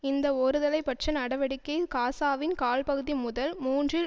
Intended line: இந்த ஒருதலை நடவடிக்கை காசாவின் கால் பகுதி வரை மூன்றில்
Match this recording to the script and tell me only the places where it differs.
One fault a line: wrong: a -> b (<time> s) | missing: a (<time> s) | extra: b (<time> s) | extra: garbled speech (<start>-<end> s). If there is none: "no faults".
extra: பட்ச (0.8 s)
wrong: வரை -> முதல் (3.2 s)